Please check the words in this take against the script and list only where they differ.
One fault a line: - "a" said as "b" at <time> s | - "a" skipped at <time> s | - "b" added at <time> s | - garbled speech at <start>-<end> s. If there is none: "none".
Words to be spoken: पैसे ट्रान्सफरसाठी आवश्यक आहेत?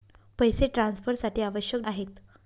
none